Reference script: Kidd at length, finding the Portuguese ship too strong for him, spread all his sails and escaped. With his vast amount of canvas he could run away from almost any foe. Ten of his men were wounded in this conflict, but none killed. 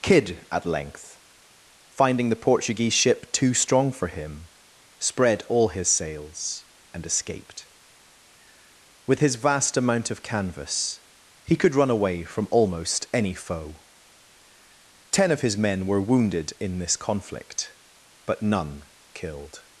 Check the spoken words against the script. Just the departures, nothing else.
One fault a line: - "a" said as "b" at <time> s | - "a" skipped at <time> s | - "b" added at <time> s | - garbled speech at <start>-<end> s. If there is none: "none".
none